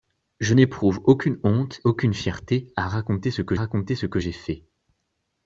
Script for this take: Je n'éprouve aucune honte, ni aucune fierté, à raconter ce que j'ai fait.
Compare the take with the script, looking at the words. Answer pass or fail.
fail